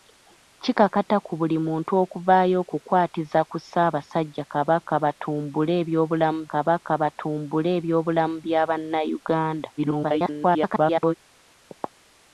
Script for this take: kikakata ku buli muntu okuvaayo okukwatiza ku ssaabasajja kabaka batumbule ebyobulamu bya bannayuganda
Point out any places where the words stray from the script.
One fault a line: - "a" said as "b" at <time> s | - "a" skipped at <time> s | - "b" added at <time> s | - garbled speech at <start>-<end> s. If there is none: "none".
- "kabaka batumbule ebyobulamu" added at 6.5 s
- garbled speech at 9.8-11.1 s